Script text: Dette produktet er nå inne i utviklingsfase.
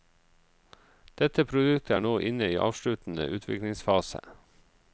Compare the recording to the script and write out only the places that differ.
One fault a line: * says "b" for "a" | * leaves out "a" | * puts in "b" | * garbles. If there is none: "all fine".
* puts in "avsluttende"